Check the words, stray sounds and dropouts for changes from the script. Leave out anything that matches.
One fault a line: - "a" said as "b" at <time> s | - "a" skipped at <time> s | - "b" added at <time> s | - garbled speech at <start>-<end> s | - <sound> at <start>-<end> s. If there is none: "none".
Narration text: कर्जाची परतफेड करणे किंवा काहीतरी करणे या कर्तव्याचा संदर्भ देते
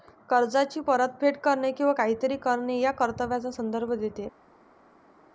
none